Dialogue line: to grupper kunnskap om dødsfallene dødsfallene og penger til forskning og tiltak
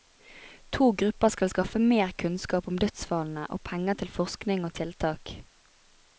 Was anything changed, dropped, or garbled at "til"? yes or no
no